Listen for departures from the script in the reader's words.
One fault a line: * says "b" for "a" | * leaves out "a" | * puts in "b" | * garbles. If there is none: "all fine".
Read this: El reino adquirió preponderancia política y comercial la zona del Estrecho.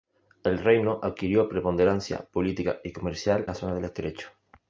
all fine